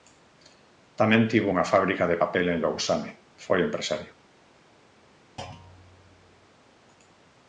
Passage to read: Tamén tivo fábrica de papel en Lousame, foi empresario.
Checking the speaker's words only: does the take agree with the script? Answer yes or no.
no